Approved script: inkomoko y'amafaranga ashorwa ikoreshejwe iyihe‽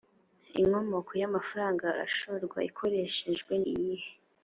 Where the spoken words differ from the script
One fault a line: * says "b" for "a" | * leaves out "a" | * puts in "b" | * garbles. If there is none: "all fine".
all fine